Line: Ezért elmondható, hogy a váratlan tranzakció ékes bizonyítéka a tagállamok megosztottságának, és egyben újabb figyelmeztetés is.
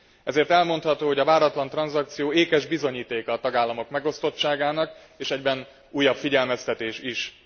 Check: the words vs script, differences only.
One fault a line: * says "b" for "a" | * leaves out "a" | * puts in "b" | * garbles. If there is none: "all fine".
all fine